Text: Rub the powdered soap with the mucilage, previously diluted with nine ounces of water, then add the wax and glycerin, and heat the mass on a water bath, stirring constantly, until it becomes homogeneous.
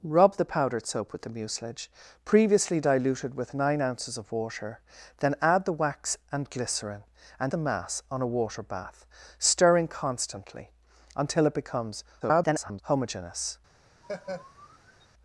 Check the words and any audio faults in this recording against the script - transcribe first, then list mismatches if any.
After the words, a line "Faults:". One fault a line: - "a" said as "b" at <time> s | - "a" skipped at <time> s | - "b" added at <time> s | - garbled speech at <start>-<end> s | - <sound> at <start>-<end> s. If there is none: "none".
Rub the powdered soap with the mucilage, previously diluted with nine ounces of water, then add the wax and glycerin, and the mass on a water bath, stirring constantly, until it becomes [garbled] homogeneous.
Faults:
- "heat" skipped at 7.5 s
- garbled speech at 12.2-12.8 s
- laugh at 14.0-15.1 s